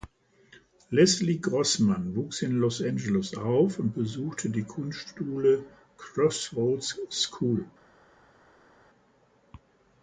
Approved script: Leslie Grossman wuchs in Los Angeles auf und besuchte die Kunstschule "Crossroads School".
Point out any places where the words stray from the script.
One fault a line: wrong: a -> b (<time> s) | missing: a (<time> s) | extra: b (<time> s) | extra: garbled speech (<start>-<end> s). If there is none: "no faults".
no faults